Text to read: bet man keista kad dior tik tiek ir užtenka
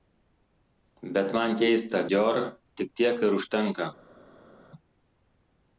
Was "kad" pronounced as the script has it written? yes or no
no